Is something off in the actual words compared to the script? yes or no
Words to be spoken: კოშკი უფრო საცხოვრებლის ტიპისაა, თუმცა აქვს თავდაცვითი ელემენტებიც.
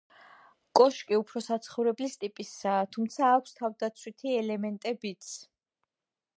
no